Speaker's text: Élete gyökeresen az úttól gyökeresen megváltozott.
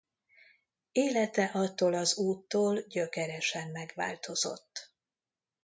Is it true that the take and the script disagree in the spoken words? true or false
true